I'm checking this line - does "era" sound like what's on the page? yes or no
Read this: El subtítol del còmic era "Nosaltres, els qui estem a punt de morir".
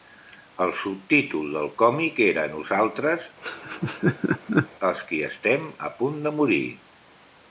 yes